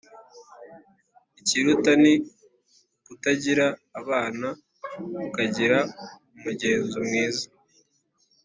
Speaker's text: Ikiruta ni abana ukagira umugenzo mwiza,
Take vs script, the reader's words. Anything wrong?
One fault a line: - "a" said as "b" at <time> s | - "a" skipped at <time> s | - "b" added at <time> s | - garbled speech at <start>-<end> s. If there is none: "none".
- "ukutagira" added at 3.0 s